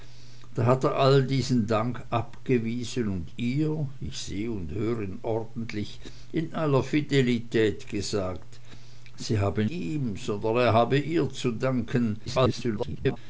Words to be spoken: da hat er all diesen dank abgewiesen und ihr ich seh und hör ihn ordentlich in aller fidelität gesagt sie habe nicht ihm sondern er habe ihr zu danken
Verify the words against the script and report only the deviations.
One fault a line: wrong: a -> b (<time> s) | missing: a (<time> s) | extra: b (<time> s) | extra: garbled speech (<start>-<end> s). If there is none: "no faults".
missing: nicht (9.7 s)
extra: garbled speech (12.3-13.2 s)